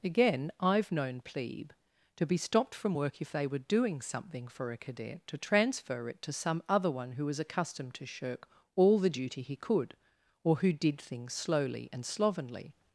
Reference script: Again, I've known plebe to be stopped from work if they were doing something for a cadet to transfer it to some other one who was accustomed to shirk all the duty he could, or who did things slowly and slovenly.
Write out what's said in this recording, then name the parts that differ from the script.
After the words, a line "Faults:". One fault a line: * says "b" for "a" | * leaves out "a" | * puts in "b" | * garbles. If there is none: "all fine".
Again, I've known plebe to be stopped from work if they were doing something for a cadet to transfer it to some other one who was accustomed to shirk all the duty he could, or who did things slowly and slovenly.
Faults:
all fine